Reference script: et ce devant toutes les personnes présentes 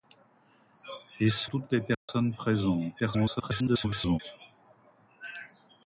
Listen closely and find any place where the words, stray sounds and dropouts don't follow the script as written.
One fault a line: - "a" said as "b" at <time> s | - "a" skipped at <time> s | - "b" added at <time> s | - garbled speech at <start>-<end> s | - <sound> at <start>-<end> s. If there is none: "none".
- "devant" skipped at 1.5 s
- dropout at 1.9-2.1 s
- garbled speech at 3.0-4.2 s